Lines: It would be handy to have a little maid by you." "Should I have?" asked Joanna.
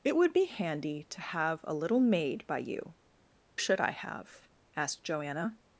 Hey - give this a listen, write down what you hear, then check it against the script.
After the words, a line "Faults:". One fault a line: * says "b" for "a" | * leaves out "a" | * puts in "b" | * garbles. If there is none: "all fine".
It would be handy to have a little maid by you." "Should I have?" asked Joanna.
Faults:
all fine